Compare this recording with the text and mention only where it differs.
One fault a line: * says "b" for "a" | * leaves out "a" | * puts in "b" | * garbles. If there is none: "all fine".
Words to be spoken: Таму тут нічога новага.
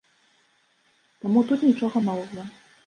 all fine